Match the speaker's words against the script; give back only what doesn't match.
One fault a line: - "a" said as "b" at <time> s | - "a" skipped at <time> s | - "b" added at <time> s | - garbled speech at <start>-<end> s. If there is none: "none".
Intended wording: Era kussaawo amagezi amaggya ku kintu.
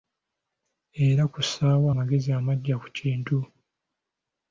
none